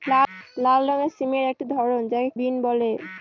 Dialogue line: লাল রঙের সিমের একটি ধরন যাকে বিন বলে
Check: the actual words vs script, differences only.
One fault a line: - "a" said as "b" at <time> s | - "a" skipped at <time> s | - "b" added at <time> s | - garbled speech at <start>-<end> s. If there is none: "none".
none